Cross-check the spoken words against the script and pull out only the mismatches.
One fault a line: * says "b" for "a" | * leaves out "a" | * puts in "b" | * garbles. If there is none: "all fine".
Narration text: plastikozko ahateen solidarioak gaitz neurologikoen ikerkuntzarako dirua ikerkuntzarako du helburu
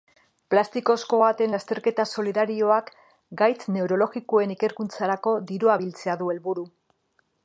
* puts in "lasterketa"
* says "biltzea" for "ikerkuntzarako"